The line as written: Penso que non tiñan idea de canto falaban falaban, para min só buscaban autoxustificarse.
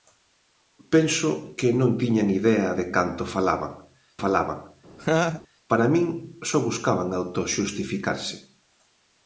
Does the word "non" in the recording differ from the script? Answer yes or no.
no